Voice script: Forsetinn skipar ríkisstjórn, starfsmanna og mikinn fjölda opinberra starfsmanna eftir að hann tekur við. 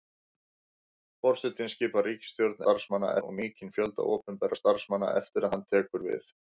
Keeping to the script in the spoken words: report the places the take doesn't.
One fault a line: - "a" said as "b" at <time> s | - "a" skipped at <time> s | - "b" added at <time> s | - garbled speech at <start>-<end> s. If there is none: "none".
none